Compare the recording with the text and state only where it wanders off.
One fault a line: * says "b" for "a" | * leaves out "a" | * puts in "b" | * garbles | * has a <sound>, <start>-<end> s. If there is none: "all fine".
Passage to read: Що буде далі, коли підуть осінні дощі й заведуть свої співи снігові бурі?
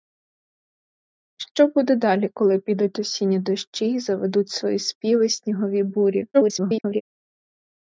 * garbles